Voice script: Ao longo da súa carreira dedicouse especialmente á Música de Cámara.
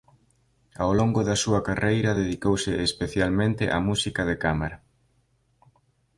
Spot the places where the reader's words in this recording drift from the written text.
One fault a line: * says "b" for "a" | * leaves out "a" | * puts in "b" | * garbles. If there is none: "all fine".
all fine